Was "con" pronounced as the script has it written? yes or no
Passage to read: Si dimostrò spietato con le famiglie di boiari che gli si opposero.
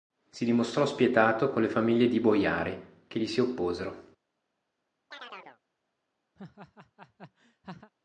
yes